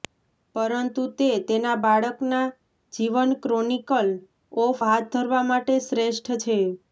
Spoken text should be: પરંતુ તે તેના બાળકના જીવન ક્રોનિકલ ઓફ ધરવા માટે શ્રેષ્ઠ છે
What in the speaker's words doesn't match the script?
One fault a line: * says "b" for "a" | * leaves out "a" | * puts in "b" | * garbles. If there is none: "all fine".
* puts in "હાથ"